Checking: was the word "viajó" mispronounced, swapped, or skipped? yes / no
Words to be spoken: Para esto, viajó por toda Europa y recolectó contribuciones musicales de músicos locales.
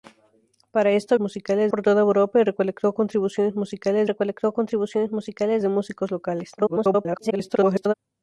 yes